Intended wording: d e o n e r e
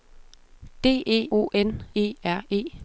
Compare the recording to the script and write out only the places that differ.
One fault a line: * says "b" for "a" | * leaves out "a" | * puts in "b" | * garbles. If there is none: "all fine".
all fine